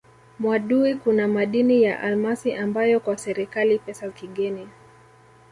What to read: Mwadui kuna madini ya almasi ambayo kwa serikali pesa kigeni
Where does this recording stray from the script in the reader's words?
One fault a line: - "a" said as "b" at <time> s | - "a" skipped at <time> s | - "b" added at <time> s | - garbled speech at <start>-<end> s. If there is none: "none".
none